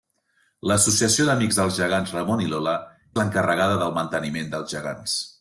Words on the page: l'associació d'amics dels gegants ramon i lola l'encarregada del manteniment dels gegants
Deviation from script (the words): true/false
false